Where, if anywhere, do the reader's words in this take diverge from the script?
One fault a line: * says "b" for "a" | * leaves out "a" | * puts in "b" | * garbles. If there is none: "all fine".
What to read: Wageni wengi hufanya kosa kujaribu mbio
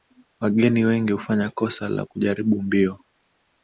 * puts in "la"